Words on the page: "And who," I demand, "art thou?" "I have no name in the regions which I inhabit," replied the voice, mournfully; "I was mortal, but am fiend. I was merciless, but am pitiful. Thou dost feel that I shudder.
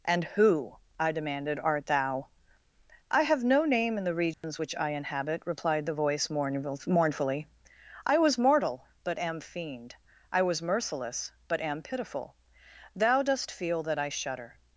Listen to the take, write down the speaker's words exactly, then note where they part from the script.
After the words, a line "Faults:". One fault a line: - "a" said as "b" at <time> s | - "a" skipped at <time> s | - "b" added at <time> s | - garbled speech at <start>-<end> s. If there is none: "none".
"And who," I demanded, "art thou?" "I have no name in the regions which I inhabit," replied the voice, mournfully; "I was mortal, but am fiend. I was merciless, but am pitiful. Thou dost feel that I shudder.
Faults:
- "demand" said as "demanded" at 1.1 s